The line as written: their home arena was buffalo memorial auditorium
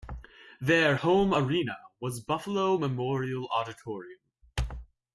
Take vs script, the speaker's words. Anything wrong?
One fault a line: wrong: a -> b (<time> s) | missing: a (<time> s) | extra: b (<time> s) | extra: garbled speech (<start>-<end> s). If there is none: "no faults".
no faults